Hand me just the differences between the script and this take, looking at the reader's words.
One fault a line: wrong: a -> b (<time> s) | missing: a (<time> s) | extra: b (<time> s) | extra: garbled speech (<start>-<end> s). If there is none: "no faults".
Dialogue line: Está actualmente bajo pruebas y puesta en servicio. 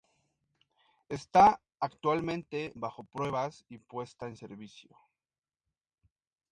no faults